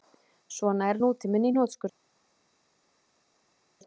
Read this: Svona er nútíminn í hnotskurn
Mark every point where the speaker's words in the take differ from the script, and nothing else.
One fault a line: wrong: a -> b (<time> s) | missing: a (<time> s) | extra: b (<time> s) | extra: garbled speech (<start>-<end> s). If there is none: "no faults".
no faults